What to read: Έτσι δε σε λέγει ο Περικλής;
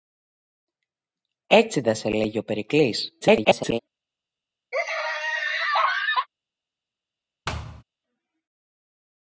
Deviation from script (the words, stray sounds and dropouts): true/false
true